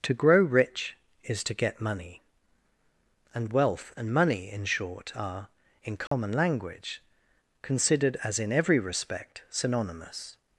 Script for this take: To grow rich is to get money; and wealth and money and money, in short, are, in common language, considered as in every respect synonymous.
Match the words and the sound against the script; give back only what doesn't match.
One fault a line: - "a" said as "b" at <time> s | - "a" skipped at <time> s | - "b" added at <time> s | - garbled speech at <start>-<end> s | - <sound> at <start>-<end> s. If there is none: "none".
- "and money" skipped at 4.5 s
- dropout at 6.1-6.1 s